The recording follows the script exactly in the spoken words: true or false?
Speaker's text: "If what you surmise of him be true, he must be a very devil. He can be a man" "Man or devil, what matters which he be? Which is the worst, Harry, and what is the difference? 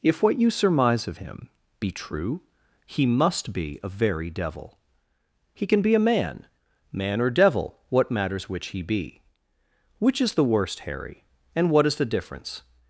true